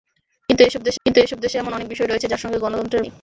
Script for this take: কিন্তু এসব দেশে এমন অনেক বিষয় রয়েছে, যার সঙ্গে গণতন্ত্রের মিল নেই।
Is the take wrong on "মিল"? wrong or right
wrong